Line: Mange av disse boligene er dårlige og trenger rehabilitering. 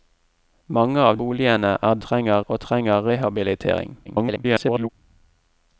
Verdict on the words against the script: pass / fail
fail